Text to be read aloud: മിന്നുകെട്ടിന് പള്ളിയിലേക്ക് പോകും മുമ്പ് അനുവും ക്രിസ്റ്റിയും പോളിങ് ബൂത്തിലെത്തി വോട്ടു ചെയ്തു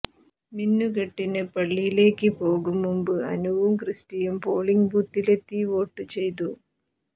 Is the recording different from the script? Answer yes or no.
no